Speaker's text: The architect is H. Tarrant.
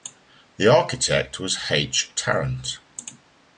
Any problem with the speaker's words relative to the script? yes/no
yes